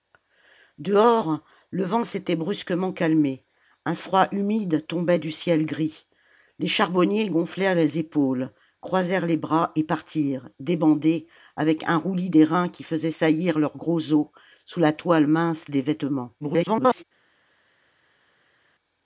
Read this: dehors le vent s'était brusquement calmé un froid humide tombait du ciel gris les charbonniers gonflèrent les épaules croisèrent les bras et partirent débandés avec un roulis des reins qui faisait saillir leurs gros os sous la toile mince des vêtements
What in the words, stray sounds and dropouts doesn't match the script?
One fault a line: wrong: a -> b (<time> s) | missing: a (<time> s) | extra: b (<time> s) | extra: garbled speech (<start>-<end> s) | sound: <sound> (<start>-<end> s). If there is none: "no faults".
extra: garbled speech (16.4-17.0 s)